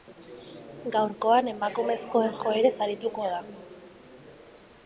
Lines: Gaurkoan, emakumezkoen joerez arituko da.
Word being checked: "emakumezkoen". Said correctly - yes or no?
yes